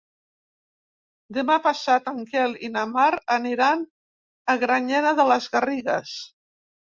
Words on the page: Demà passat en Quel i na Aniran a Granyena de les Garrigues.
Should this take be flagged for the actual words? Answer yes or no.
yes